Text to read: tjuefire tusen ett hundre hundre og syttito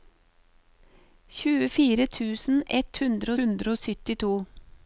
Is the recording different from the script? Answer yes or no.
no